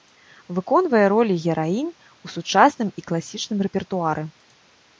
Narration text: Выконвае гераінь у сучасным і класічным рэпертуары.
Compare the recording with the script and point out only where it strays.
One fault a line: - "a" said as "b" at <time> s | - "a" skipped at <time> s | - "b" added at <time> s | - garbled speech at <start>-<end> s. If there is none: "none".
- "ролі" added at 1.1 s